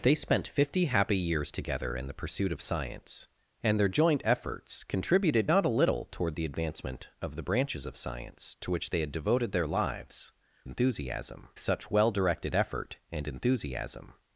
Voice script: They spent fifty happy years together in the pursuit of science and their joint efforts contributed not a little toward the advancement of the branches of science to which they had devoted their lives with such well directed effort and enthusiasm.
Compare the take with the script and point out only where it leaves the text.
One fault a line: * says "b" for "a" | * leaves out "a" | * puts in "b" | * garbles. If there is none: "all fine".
* says "enthusiasm" for "with"